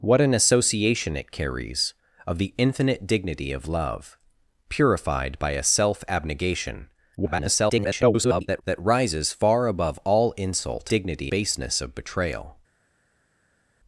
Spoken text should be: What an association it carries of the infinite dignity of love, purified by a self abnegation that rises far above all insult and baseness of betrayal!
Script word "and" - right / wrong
wrong